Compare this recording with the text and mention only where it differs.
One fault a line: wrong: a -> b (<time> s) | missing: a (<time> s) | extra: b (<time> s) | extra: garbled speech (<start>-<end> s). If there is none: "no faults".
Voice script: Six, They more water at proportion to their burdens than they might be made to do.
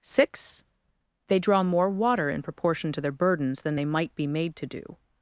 extra: draw (1.4 s)
wrong: at -> in (2.3 s)